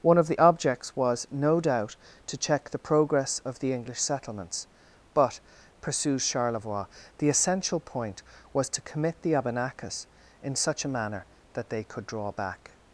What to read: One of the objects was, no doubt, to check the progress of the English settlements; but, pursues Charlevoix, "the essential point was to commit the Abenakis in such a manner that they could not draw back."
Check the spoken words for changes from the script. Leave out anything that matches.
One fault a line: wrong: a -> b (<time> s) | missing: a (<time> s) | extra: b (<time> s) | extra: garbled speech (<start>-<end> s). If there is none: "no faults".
missing: not (12.1 s)